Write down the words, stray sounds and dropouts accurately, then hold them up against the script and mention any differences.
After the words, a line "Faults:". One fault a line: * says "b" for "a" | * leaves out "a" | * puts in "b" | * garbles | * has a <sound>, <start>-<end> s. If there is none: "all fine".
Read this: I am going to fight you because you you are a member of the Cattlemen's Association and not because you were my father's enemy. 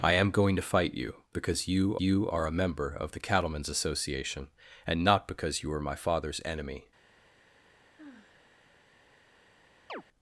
I am going to fight you because you you are a member of the Cattlemen's Association and not because you were my father's enemy.
Faults:
* has a sigh, 8.0-8.7 s
* has a chirp, 9.9-10.0 s